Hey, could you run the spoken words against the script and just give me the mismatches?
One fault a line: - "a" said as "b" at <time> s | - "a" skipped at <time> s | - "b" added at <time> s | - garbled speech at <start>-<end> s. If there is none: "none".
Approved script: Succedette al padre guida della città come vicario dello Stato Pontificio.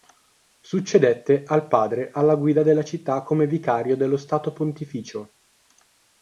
- "alla" added at 2.1 s